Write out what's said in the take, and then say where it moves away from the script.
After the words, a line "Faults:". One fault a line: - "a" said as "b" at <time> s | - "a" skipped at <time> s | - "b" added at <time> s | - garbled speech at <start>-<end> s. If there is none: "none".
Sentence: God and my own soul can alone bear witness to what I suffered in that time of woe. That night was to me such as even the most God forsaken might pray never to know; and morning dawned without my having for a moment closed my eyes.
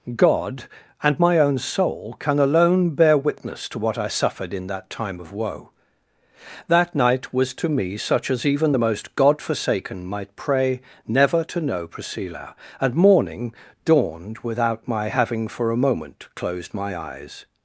God and my own soul can alone bear witness to what I suffered in that time of woe. That night was to me such as even the most God forsaken might pray never to know; priscilla and morning dawned without my having for a moment closed my eyes.
Faults:
- "priscilla" added at 11.9 s